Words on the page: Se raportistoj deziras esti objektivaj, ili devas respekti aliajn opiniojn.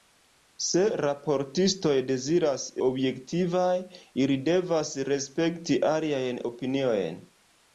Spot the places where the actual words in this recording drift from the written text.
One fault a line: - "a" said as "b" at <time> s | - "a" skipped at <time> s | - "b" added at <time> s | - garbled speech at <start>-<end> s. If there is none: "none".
- "esti" skipped at 2.6 s